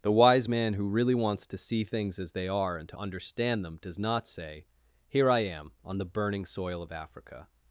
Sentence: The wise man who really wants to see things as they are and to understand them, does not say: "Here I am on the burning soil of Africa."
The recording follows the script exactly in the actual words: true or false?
true